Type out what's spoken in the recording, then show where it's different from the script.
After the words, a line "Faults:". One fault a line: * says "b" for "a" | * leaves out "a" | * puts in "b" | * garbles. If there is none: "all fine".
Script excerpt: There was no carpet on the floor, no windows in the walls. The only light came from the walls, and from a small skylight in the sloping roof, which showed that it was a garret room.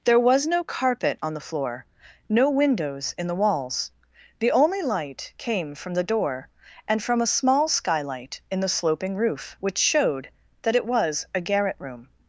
There was no carpet on the floor, no windows in the walls. The only light came from the door, and from a small skylight in the sloping roof, which showed that it was a garret room.
Faults:
* says "door" for "walls"